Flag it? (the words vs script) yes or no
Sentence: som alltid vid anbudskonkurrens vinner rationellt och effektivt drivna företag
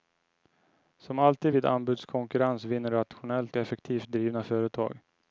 yes